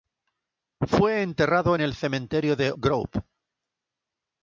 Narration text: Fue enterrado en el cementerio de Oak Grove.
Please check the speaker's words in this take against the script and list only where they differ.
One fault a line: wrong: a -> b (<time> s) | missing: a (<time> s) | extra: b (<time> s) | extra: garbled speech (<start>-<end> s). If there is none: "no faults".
missing: Oak (2.7 s)